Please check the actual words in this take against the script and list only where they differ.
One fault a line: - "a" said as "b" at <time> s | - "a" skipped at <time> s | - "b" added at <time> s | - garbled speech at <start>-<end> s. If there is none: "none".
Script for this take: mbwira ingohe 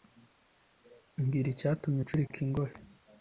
- "icyatumye ucurika" added at 1.5 s